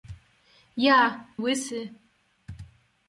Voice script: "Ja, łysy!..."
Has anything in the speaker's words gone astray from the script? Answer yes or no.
no